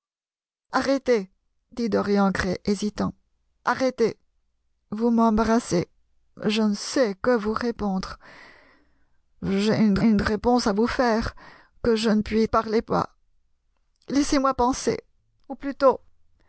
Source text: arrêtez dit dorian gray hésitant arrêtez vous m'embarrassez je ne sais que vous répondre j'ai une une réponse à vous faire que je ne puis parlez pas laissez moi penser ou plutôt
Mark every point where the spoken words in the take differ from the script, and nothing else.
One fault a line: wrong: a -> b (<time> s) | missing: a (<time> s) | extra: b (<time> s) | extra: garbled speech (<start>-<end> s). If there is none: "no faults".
no faults